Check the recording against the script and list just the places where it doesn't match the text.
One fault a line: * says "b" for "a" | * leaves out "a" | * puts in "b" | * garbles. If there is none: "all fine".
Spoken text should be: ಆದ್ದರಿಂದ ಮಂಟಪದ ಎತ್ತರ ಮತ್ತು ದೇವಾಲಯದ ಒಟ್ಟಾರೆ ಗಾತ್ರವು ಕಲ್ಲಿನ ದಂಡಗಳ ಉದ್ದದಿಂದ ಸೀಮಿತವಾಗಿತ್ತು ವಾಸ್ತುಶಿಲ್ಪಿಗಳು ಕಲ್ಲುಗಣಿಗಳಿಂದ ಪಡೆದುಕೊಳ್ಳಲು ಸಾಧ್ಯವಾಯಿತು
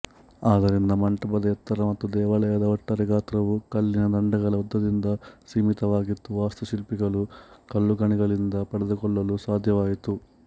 all fine